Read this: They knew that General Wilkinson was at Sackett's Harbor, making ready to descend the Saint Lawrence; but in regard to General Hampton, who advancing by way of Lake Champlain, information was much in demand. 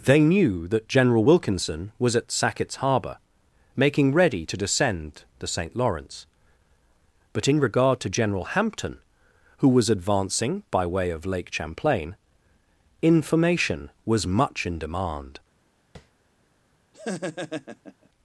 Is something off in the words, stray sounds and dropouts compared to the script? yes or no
yes